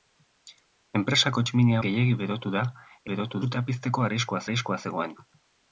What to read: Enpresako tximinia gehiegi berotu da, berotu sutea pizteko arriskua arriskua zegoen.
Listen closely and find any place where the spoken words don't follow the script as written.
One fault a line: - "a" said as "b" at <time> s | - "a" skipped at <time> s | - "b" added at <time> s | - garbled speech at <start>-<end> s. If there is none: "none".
none